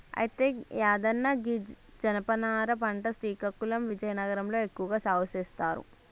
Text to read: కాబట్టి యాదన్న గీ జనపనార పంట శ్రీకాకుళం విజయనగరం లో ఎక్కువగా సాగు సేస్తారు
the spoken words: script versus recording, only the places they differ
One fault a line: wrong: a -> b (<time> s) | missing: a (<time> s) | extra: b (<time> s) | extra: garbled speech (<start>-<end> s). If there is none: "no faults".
wrong: కాబట్టి -> అయితే (0.2 s)